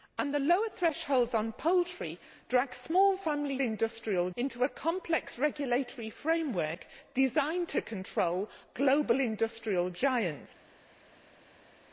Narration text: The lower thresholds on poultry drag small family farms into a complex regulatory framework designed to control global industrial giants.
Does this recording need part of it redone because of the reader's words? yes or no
yes